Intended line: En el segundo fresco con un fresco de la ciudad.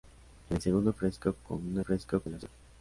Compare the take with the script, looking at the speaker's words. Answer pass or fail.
pass